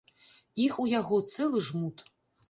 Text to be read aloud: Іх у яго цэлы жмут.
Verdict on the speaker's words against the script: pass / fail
pass